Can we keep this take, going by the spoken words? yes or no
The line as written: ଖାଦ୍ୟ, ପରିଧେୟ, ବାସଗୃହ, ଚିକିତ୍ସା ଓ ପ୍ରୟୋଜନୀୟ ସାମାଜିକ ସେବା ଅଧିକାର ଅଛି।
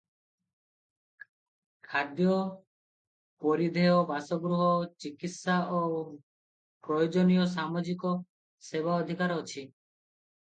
yes